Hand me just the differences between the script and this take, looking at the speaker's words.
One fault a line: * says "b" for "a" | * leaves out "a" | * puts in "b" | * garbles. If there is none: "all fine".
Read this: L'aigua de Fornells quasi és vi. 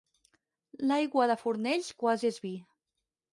all fine